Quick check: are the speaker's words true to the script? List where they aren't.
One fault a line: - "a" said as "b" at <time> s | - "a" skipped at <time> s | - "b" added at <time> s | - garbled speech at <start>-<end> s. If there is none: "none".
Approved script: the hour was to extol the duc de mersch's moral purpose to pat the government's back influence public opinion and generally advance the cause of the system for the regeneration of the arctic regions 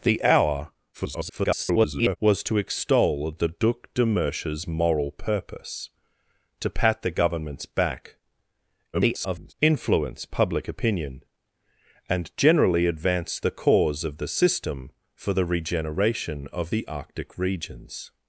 - garbled speech at 0.9-2.2 s
- garbled speech at 8.9-9.5 s